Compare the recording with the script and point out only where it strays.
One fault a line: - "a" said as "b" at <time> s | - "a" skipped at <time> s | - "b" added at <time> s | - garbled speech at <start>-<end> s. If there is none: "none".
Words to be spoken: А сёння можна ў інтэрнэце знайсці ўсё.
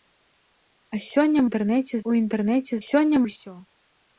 - "можна" said as "інтэрнэце" at 1.5 s
- "знайсці" said as "сёння" at 2.8 s